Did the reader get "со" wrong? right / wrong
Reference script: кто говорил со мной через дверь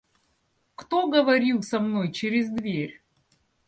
right